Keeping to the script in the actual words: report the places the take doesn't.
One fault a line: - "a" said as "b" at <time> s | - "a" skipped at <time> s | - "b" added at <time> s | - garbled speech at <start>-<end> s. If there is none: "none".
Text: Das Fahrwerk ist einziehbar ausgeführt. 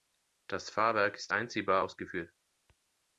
none